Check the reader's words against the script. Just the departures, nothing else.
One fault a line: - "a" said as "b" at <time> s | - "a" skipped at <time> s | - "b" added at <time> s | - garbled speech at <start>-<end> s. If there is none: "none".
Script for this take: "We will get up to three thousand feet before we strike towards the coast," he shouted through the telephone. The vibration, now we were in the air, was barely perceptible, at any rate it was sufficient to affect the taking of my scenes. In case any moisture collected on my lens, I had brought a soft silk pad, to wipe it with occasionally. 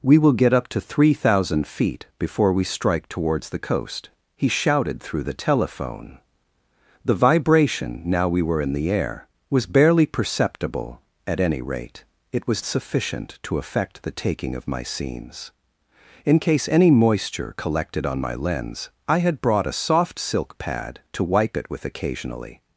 none